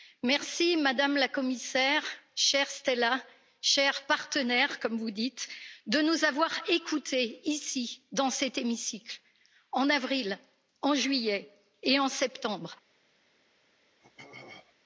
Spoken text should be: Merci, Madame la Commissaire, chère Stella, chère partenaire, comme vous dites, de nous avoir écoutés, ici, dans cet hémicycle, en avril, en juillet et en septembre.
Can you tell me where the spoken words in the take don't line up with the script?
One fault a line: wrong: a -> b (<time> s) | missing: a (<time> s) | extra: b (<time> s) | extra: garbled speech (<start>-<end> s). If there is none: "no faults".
no faults